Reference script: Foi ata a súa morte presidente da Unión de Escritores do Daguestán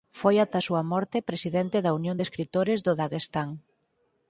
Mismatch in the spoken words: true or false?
false